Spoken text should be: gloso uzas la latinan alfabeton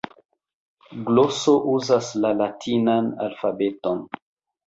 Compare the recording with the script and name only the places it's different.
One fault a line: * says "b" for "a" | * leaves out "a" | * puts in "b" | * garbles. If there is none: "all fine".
all fine